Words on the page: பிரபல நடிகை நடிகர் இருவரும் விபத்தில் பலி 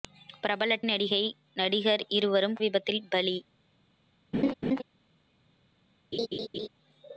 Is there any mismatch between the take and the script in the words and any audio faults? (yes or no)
yes